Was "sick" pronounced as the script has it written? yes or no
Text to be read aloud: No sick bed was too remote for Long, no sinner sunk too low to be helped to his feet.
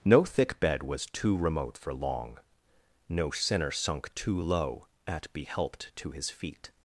no